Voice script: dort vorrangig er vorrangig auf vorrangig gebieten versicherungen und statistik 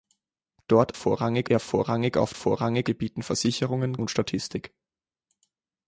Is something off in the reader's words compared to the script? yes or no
no